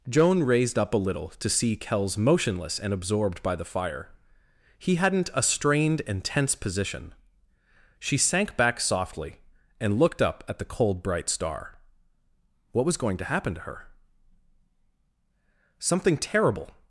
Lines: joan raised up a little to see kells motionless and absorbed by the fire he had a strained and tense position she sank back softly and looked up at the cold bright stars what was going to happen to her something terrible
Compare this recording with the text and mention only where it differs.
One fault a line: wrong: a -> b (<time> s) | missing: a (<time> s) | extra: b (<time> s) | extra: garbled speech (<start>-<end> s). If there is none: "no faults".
wrong: had -> hadn't (5.0 s)
wrong: stars -> star (11.3 s)